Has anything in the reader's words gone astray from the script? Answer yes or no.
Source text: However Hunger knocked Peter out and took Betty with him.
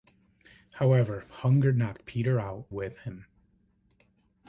yes